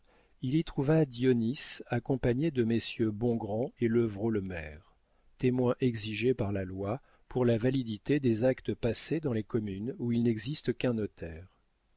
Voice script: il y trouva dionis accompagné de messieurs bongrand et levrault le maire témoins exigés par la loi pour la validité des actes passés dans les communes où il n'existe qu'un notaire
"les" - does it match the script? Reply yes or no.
yes